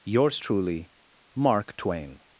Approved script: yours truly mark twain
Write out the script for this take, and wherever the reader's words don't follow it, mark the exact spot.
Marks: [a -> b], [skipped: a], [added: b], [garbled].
yours truly mark twain